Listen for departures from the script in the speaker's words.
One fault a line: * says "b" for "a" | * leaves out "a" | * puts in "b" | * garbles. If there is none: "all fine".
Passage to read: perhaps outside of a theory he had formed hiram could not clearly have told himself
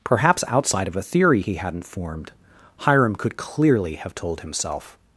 * says "hadn't" for "had"
* leaves out "not"